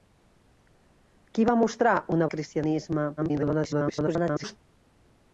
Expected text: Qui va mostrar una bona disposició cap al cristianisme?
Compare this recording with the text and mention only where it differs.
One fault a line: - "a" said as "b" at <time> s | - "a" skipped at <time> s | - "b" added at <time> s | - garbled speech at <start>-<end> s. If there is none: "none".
- "bona disposició cap" skipped at 2.3 s
- garbled speech at 3.2-4.6 s